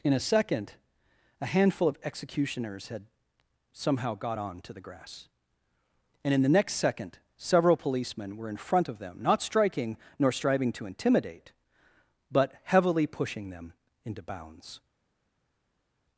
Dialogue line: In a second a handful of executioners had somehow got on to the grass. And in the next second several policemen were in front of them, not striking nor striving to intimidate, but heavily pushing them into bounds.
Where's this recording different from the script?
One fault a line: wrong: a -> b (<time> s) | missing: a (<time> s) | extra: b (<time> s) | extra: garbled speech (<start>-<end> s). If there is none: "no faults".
no faults